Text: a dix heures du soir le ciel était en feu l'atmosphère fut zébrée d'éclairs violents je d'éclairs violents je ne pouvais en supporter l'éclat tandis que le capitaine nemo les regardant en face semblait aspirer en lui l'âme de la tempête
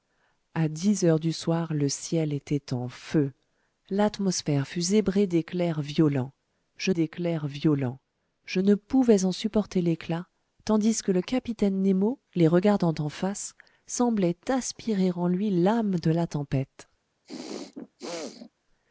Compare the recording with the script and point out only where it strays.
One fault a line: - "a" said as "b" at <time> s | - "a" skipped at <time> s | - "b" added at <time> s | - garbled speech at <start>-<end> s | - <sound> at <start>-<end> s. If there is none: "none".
- throat clearing at 17.2-18.5 s